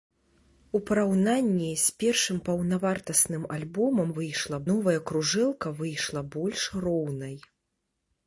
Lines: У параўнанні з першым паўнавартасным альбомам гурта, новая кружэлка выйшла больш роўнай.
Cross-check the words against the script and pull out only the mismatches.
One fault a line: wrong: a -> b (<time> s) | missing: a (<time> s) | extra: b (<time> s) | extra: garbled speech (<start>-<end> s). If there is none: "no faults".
wrong: гурта -> выйшла (4.2 s)